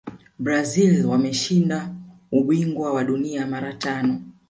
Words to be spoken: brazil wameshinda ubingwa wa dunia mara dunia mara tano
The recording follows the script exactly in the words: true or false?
false